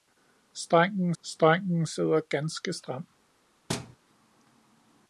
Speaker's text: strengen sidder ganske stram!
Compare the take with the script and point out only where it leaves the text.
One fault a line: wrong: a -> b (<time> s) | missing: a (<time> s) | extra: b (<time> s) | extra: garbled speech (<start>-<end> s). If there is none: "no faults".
extra: strengen (1.2 s)